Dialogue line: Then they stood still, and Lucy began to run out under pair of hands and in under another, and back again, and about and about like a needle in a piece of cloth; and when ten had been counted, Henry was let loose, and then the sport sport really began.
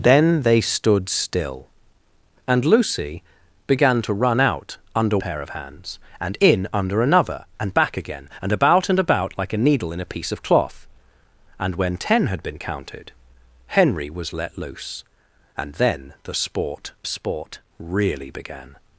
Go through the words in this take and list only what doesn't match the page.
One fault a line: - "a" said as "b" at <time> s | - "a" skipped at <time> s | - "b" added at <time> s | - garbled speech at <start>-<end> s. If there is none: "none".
none